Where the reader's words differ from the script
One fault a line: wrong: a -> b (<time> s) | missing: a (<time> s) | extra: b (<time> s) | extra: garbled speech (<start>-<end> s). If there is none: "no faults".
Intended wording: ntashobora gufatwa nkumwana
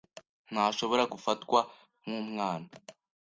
no faults